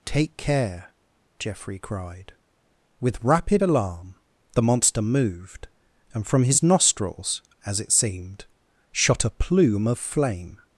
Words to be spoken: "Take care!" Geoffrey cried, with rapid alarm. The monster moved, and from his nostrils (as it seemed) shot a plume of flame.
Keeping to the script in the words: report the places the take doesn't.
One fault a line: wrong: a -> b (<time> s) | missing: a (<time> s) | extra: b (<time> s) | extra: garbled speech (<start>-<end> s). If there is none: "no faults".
no faults